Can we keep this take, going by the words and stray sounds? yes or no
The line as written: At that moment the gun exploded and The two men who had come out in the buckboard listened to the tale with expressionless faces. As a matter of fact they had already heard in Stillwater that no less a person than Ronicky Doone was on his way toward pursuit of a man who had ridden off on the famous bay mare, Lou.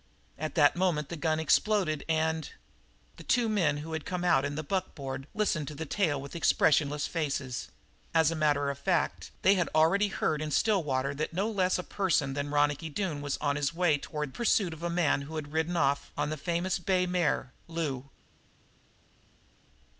yes